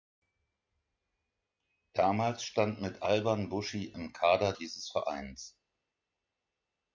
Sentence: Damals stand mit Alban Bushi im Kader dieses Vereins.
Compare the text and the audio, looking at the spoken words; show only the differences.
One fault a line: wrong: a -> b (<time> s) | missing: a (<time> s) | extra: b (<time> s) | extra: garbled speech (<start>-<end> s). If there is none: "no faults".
no faults